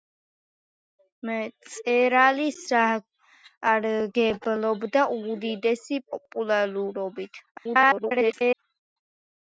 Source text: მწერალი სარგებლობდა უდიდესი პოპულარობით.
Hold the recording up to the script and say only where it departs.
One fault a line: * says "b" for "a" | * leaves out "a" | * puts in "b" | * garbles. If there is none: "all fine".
* garbles